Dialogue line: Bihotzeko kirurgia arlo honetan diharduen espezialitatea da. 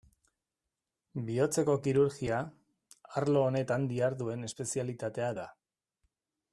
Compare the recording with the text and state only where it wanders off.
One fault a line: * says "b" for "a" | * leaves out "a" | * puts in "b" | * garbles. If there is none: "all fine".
all fine